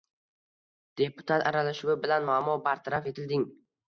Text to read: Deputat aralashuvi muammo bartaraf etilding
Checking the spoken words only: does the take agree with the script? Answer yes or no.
no